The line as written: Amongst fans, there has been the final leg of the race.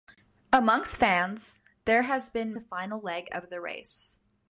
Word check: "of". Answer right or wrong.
right